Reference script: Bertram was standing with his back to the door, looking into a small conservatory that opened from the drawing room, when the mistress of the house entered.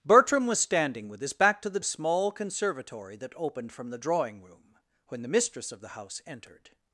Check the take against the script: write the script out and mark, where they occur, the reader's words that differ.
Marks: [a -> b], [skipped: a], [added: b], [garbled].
Bertram was standing with his back to the [skipped: door, looking into] a small conservatory that opened from the drawing room, when the mistress of the house entered.